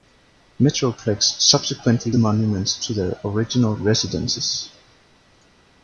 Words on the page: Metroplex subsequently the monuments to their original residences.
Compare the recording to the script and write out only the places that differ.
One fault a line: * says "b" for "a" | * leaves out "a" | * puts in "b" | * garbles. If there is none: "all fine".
all fine